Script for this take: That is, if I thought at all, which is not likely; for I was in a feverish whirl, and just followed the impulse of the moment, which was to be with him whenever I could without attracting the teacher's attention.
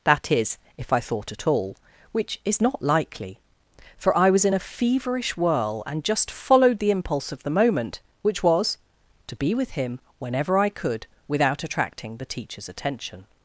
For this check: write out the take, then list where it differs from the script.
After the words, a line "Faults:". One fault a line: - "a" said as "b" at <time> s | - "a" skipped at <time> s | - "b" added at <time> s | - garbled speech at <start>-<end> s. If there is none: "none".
That is, if I thought at all, which is not likely; for I was in a feverish whirl, and just followed the impulse of the moment, which was to be with him whenever I could without attracting the teacher's attention.
Faults:
none